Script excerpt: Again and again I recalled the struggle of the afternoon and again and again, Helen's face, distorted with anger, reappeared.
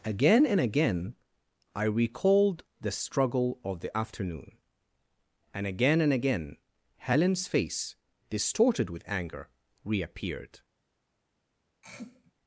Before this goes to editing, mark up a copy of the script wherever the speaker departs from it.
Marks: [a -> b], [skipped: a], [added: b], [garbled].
Again and again I recalled the struggle of the afternoon and again and again, Helen's face, distorted with anger, reappeared.